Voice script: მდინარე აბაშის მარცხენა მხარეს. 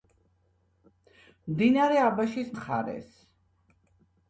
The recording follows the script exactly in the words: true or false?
false